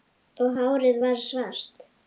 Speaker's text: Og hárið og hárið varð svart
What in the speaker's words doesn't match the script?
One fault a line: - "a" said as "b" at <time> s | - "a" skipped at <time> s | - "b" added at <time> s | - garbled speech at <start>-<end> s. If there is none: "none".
- "og hárið" skipped at 1.0 s